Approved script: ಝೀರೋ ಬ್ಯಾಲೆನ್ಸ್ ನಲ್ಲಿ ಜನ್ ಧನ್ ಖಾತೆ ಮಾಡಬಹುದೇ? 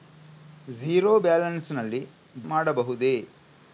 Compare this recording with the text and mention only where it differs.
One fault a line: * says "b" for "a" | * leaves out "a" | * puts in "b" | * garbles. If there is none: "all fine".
* leaves out "ಜನ್ ಧನ್ ಖಾತೆ"